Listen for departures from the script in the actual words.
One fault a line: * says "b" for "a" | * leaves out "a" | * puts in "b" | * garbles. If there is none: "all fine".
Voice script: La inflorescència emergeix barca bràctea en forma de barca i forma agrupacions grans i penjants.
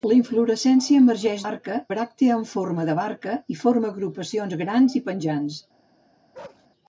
all fine